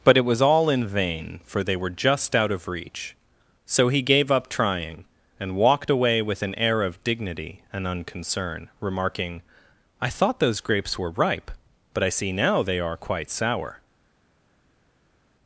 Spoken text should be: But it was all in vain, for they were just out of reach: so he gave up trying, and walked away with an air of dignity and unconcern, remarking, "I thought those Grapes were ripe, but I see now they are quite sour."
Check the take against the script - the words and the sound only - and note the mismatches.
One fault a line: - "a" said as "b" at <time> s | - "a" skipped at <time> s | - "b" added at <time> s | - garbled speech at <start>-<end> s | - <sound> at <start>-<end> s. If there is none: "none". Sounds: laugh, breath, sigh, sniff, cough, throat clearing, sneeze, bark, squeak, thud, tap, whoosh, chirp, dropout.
none